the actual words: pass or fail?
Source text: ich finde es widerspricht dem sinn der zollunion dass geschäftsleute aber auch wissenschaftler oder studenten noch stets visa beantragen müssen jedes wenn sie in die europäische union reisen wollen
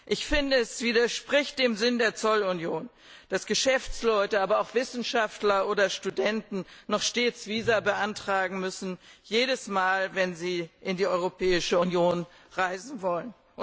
fail